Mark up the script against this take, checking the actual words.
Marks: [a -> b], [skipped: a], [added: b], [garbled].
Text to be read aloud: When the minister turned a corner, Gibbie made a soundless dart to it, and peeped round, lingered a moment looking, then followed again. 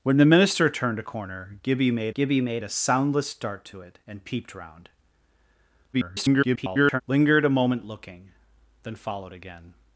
When the minister turned a corner, Gibbie made [added: Gibbie made] a soundless dart to it, and peeped round, [garbled] lingered a moment looking, then followed again.